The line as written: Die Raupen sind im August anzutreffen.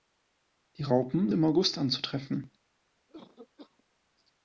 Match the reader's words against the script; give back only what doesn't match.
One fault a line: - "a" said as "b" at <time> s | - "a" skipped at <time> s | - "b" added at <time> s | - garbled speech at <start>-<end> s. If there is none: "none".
- "sind" skipped at 1.3 s